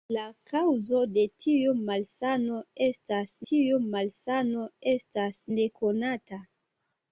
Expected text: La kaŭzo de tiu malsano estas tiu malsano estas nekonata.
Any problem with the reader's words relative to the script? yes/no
no